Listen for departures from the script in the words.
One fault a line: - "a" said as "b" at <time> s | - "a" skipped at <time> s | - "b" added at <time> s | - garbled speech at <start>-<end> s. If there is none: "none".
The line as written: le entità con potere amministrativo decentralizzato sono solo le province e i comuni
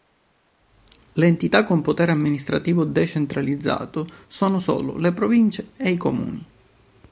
none